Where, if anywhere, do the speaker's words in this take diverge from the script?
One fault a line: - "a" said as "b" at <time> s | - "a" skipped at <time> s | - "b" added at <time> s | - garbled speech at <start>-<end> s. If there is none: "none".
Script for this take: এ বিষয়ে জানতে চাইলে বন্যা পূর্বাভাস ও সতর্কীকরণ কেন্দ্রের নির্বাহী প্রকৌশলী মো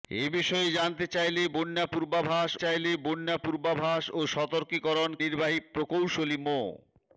- "চাইলে বন্যা পূর্বাভাস" added at 2.5 s
- "কেন্দ্রের" skipped at 5.1 s